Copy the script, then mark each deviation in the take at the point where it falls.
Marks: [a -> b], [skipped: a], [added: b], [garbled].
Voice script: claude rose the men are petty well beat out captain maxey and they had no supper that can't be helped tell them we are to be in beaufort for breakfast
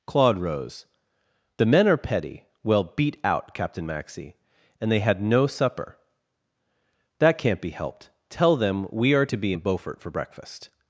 claude rose the men are petty well beat out captain maxey and they had no supper that can't be helped tell them we are to be in beaufort for breakfast